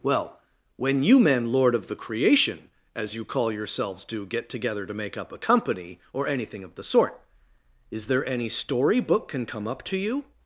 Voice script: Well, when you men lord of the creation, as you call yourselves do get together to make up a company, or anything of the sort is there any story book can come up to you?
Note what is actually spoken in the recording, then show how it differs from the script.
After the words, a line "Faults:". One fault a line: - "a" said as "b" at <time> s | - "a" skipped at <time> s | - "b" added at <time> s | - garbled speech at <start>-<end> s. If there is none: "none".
Well, when you men lord of the creation, as you call yourselves do get together to make up a company, or anything of the sort is there any story book can come up to you?
Faults:
none